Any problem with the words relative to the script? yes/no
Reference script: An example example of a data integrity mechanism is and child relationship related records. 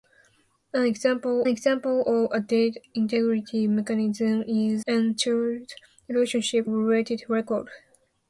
no